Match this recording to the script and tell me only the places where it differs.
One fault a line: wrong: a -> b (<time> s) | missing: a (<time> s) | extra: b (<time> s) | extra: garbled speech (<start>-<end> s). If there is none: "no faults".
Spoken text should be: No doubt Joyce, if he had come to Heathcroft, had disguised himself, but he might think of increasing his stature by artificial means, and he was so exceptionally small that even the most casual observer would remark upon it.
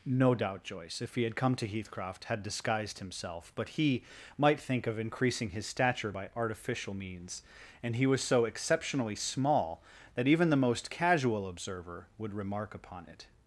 no faults